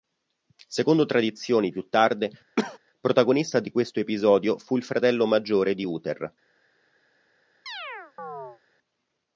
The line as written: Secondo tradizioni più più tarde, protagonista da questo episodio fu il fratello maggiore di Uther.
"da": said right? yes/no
no